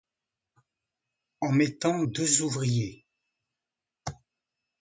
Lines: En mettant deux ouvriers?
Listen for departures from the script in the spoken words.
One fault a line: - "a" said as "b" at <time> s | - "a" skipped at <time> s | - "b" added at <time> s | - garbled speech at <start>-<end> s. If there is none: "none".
none